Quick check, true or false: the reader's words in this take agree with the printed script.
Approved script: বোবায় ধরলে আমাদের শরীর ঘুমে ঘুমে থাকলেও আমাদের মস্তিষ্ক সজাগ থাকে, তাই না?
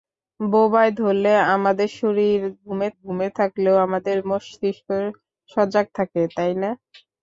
true